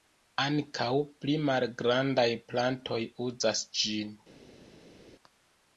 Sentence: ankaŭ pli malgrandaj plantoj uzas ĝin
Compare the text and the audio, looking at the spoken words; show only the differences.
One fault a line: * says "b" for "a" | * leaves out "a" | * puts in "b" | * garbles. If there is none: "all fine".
all fine